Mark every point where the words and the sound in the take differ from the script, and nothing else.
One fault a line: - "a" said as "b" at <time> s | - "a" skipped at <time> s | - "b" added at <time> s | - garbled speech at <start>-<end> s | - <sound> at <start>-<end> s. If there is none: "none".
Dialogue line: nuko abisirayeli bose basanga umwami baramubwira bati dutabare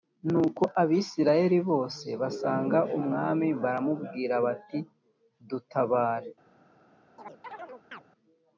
- chirp at 7.2-8.0 s